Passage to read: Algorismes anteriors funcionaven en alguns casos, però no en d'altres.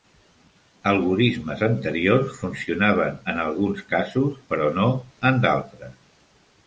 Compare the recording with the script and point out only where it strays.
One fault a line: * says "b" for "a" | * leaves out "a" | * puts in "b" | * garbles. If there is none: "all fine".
all fine